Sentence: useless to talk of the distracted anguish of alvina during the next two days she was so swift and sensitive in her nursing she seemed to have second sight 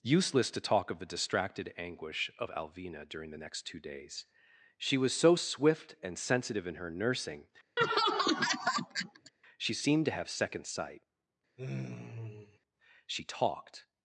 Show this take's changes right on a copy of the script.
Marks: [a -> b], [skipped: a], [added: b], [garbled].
useless to talk of the distracted anguish of alvina during the next two days she was so swift and sensitive in her nursing she seemed to have second sight [added: she talked]